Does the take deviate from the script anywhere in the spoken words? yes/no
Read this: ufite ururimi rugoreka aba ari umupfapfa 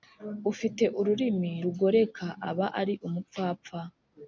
no